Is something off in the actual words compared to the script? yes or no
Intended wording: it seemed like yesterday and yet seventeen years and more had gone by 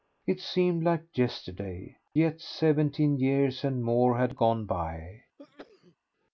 yes